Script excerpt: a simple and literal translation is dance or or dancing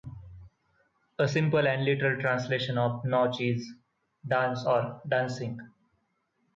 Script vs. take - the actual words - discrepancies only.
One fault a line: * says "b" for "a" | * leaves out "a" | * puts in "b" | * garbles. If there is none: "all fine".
* puts in "of nautch"
* leaves out "or"